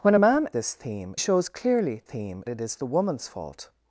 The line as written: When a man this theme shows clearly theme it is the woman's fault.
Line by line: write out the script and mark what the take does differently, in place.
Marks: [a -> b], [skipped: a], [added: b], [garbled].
When a man this theme shows clearly theme it is the woman's fault.